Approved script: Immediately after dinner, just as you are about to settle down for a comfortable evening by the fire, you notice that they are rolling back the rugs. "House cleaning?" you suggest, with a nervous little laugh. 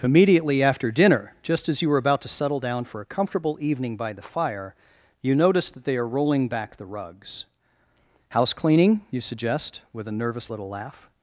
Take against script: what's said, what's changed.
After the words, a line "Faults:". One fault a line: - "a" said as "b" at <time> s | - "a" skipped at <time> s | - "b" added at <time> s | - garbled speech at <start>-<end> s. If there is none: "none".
Immediately after dinner, just as you were about to settle down for a comfortable evening by the fire, you notice that they are rolling back the rugs. "House cleaning?" you suggest, with a nervous little laugh.
Faults:
- "are" said as "were" at 1.9 s